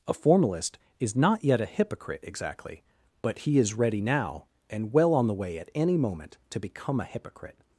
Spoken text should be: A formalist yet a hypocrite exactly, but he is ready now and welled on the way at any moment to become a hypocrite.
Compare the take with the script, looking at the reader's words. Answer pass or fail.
fail